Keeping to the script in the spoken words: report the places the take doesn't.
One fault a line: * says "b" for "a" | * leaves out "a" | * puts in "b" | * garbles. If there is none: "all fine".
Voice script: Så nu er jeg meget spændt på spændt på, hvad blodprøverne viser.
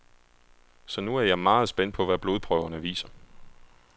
* leaves out "spændt på"